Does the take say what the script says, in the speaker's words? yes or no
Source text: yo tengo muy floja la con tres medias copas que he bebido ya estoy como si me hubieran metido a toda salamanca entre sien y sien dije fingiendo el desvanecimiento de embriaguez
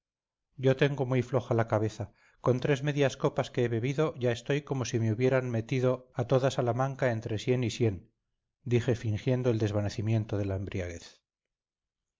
no